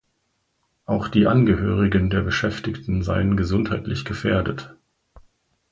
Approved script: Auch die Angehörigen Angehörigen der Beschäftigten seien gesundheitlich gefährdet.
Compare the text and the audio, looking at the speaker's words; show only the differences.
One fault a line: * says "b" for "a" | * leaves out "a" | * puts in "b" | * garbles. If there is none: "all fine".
* leaves out "Angehörigen"